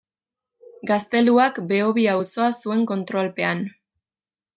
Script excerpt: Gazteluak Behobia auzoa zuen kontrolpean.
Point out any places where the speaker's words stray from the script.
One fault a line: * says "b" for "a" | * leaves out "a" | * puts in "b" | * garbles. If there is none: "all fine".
all fine